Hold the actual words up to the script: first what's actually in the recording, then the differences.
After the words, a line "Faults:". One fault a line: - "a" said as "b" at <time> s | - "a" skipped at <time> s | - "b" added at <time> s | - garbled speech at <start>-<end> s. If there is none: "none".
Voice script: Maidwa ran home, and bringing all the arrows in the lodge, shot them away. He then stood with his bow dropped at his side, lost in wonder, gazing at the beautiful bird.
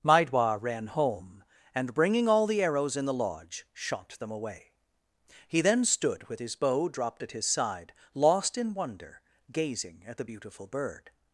Maidwa ran home, and bringing all the arrows in the lodge, shot them away. He then stood with his bow dropped at his side, lost in wonder, gazing at the beautiful bird.
Faults:
none